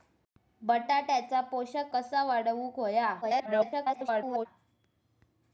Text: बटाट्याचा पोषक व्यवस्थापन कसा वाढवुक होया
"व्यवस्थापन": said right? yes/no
no